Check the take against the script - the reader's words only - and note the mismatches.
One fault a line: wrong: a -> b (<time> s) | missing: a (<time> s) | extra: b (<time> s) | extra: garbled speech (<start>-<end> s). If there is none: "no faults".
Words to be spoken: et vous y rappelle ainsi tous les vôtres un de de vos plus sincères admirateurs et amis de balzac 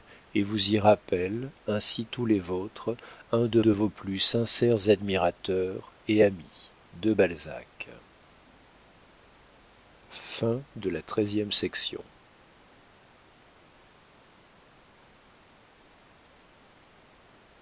no faults